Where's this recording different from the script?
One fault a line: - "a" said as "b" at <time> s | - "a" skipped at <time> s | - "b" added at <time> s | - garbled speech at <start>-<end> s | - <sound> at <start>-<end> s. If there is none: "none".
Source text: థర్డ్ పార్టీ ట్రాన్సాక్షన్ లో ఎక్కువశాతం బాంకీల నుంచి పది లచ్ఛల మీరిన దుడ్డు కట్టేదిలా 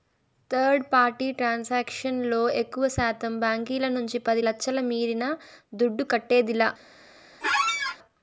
- squeak at 7.4-8.0 s